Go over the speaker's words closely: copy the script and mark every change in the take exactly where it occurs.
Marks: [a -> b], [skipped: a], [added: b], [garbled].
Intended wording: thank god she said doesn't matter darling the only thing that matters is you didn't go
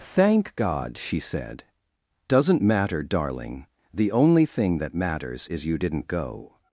thank god she said doesn't matter darling the only thing that matters is you didn't go